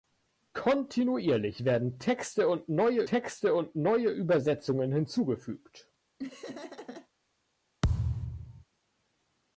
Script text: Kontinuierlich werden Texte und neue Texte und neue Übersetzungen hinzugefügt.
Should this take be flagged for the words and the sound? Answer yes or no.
yes